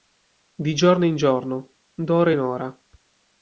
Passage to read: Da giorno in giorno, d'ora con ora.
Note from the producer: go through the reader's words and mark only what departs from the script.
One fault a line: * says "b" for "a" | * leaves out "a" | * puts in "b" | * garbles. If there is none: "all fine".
* says "Di" for "Da"
* says "in" for "con"